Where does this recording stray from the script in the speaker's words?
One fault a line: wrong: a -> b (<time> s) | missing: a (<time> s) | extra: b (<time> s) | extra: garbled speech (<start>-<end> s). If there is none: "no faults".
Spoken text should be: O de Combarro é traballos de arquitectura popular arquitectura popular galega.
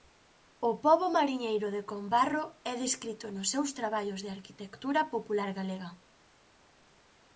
extra: pobo mariñeiro (0.8 s)
extra: descrito nos seus (2.8 s)
missing: arquitectura popular (5.5 s)